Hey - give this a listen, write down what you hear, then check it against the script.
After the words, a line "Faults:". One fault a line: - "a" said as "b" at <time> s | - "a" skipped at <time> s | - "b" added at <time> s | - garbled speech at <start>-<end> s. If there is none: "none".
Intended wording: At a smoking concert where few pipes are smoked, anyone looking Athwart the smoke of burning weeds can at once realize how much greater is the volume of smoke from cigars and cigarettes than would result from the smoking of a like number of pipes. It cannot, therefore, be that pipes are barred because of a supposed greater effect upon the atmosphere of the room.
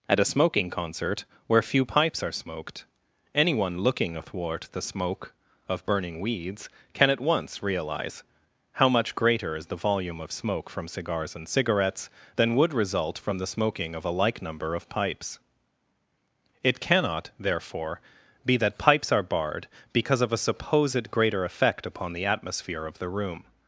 At a smoking concert where few pipes are smoked, anyone looking Athwart the smoke of burning weeds can at once realize how much greater is the volume of smoke from cigars and cigarettes than would result from the smoking of a like number of pipes. It cannot, therefore, be that pipes are barred because of a supposed greater effect upon the atmosphere of the room.
Faults:
none